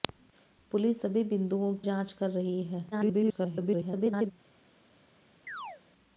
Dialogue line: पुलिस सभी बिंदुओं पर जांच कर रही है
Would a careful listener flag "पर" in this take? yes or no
yes